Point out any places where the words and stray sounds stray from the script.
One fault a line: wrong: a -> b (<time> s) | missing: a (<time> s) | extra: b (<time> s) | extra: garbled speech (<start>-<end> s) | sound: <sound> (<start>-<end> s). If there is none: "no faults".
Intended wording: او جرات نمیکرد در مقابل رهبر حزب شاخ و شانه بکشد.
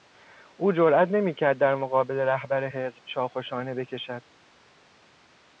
no faults